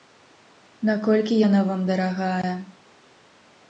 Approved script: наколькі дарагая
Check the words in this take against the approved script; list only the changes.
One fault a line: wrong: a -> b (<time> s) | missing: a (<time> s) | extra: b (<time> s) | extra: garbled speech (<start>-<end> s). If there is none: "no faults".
extra: яна вам (1.5 s)